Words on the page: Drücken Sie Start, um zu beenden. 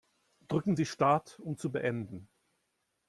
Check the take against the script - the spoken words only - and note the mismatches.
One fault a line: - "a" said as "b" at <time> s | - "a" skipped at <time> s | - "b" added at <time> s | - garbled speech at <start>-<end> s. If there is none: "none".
none